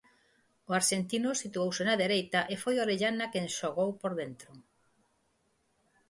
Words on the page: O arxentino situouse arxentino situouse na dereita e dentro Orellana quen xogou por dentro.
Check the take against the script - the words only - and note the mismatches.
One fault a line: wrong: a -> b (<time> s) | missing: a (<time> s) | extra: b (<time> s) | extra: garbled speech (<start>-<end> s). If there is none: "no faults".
missing: arxentino situouse (1.8 s)
wrong: dentro -> foi (2.6 s)